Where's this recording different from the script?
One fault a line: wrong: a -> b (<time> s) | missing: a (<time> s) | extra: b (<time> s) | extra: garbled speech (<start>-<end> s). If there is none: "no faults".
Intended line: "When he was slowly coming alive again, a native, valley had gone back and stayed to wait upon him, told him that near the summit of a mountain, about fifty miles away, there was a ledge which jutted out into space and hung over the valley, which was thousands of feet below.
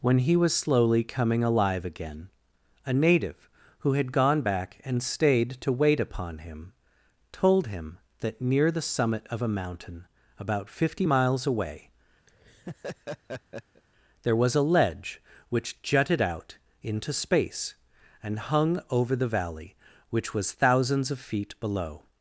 wrong: valley -> who (3.8 s)